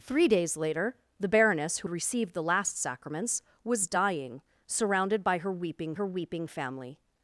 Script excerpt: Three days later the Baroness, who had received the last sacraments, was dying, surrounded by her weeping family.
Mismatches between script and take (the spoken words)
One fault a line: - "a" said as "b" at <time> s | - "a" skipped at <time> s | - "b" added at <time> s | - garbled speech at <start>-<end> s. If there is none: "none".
- "had" skipped at 1.9 s
- "her weeping" added at 5.9 s